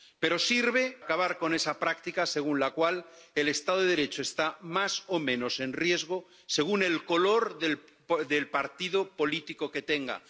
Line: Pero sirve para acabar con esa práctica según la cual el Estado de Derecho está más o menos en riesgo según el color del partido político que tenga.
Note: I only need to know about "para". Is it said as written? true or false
false